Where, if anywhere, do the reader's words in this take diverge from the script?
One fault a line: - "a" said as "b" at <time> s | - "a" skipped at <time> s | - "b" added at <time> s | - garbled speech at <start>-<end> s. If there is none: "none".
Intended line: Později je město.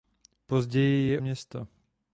none